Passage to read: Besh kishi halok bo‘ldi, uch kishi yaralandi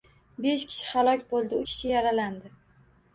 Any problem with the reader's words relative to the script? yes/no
yes